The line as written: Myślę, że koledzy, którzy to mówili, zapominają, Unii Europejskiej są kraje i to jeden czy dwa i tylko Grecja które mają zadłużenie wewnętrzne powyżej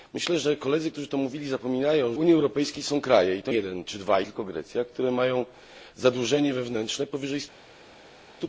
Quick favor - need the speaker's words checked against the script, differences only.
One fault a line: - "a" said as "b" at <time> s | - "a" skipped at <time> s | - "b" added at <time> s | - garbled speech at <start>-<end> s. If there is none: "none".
none